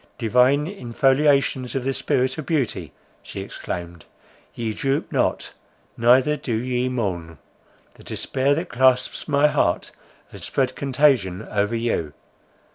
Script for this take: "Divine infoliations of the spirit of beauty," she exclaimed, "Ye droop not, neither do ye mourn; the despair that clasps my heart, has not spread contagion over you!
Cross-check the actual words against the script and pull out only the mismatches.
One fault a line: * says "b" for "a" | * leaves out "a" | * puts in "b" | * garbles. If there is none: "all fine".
* leaves out "not"